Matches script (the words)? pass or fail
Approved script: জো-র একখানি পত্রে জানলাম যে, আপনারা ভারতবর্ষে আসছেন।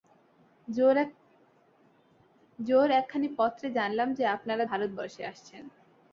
pass